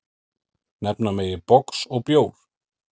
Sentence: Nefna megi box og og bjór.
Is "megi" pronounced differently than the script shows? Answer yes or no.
no